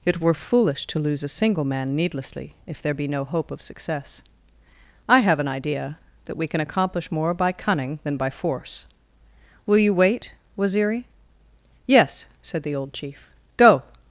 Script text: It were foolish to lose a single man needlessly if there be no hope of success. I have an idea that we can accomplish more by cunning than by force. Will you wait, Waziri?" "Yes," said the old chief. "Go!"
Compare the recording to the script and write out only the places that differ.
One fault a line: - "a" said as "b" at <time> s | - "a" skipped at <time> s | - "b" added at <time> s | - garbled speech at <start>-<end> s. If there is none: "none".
none